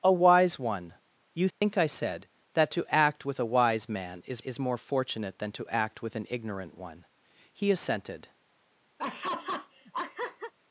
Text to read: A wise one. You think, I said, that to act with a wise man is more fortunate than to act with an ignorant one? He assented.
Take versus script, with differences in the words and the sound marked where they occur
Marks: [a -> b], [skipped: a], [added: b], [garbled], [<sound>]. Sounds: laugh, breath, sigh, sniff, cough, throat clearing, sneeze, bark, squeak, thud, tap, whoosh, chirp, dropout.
A wise one. You think, [dropout] I said, that to act with a wise man is [added: is] more fortunate than to act with an ignorant one? He assented. [laugh]